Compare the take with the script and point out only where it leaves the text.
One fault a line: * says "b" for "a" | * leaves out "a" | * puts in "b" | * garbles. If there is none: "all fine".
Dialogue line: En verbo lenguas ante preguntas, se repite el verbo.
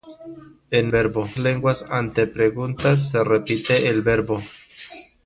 all fine